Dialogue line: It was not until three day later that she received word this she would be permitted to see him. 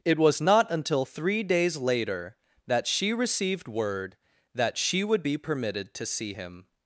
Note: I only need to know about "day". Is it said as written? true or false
false